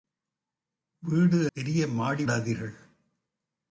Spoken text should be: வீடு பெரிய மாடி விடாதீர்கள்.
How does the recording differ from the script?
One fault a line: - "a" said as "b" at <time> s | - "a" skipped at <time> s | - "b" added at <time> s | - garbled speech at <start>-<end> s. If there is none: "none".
none